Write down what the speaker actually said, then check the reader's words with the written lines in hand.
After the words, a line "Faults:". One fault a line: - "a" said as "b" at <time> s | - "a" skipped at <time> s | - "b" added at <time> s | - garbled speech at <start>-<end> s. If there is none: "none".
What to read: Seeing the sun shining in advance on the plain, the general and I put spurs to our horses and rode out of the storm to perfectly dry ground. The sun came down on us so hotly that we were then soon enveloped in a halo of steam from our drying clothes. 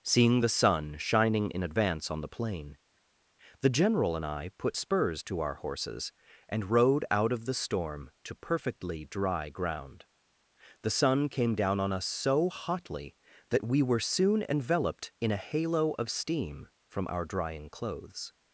Seeing the sun shining in advance on the plain, the general and I put spurs to our horses and rode out of the storm to perfectly dry ground. The sun came down on us so hotly that we were soon enveloped in a halo of steam from our drying clothes.
Faults:
- "then" skipped at 14.0 s